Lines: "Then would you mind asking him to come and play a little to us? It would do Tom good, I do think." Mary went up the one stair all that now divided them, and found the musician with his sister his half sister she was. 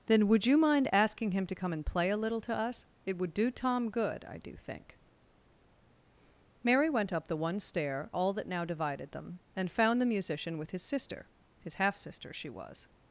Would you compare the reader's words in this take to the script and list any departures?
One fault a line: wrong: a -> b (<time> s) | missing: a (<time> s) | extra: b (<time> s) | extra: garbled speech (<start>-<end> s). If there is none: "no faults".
no faults